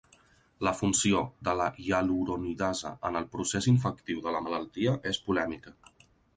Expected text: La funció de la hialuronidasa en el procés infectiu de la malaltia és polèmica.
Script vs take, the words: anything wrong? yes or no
no